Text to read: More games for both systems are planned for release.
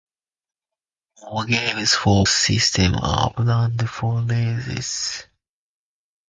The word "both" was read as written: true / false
false